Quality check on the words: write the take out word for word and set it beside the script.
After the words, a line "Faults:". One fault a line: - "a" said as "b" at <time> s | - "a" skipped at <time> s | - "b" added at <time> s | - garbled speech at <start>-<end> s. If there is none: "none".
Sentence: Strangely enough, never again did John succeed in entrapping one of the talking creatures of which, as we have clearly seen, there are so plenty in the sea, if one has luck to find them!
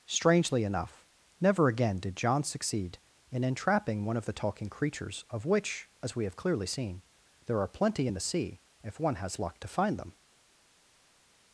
Strangely enough, never again did John succeed in entrapping one of the talking creatures of which, as we have clearly seen, there are plenty in the sea, if one has luck to find them!
Faults:
- "so" skipped at 7.7 s